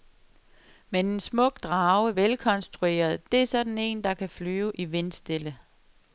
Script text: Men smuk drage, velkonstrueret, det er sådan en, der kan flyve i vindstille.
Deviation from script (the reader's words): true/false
true